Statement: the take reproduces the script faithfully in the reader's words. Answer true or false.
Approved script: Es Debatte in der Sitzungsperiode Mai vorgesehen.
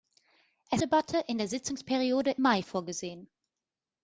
true